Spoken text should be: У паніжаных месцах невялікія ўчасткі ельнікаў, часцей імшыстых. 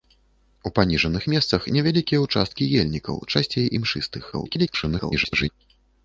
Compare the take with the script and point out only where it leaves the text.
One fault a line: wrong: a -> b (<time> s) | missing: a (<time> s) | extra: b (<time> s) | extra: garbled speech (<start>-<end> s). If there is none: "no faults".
extra: garbled speech (4.3-5.5 s)